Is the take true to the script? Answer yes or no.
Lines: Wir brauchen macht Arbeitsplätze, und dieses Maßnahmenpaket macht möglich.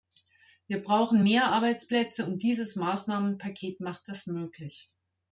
no